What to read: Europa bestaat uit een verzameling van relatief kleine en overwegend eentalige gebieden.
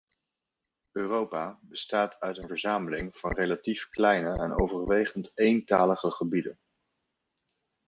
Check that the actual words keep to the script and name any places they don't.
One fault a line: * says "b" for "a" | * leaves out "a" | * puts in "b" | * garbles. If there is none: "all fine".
all fine